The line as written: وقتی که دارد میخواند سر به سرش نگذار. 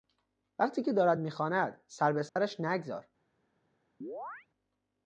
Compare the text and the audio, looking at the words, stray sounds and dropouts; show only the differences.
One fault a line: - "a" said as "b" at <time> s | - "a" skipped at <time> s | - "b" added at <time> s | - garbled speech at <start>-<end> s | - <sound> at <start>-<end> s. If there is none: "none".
- dropout at 2.3-2.4 s
- chirp at 4.0-4.5 s